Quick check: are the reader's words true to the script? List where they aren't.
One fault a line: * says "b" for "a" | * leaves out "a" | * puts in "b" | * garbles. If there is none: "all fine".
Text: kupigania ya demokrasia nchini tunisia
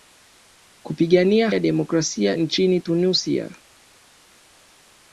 all fine